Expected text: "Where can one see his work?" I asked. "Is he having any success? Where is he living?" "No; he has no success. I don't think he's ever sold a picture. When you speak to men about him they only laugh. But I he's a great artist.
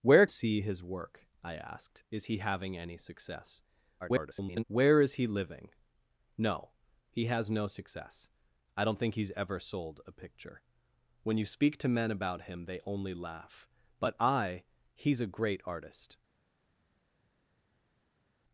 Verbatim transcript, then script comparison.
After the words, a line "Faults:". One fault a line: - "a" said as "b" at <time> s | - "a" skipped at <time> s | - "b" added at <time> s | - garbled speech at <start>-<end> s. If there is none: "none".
"Where see his work?" I asked. "Is he having any success? [garbled] Where is he living?" "No; he has no success. I don't think he's ever sold a picture. When you speak to men about him they only laugh. But I he's a great artist.
Faults:
- "can one" skipped at 0.2 s
- garbled speech at 4.0-4.6 s